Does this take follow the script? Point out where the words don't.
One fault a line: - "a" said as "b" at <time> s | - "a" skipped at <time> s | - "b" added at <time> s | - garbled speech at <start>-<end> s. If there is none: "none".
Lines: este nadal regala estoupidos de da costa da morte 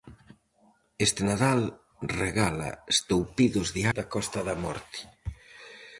none